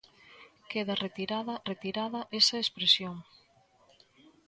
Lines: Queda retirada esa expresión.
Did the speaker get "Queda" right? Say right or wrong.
right